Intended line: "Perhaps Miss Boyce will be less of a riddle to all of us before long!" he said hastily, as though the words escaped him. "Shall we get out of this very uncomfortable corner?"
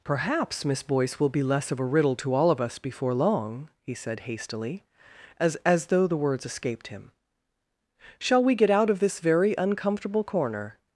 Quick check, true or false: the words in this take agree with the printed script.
false